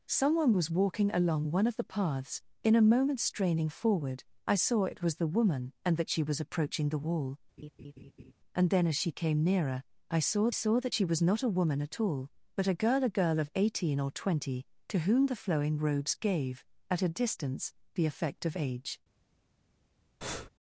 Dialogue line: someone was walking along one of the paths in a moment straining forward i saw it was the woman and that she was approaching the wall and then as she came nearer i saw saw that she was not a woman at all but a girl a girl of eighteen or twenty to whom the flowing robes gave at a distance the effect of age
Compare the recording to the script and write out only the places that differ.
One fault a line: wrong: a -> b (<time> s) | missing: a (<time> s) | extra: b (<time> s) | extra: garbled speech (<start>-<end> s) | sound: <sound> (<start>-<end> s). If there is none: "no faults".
sound: laugh (7.6-8.3 s)
sound: breath (20.2-20.5 s)